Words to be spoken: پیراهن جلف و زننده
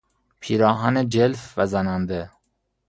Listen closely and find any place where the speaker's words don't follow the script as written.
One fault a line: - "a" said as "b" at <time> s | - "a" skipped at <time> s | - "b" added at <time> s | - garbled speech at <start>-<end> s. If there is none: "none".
none